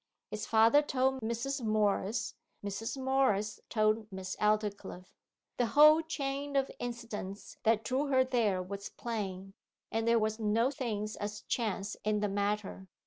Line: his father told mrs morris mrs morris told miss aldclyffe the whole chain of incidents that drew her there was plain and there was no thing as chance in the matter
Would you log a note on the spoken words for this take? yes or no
no